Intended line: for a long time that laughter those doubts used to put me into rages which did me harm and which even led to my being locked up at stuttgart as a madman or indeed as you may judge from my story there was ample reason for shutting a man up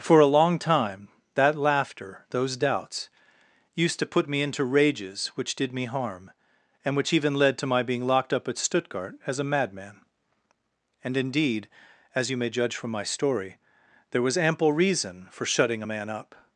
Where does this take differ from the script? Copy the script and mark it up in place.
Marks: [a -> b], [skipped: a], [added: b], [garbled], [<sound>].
for a long time that laughter those doubts used to put me into rages which did me harm and which even led to my being locked up at stuttgart as a madman [or -> and] indeed as you may judge from my story there was ample reason for shutting a man up